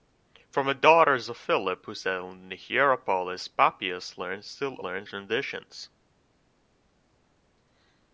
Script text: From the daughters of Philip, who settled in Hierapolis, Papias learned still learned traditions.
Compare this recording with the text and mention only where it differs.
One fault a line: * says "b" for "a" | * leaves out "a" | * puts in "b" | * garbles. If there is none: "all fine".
all fine